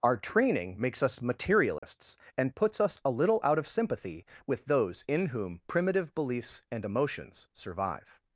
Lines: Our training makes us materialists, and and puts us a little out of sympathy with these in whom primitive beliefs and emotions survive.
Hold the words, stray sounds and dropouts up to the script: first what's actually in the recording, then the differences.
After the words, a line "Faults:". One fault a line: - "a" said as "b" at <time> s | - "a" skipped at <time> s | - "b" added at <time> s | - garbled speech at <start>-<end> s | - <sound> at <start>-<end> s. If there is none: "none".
Our training makes us materialists, and puts us a little out of sympathy with those in whom primitive beliefs and emotions survive.
Faults:
- dropout at 1.8-1.8 s
- "and" skipped at 2.5 s
- "these" said as "those" at 4.7 s